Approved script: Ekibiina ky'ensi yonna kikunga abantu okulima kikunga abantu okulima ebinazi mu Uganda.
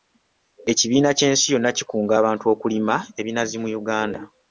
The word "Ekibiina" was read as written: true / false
true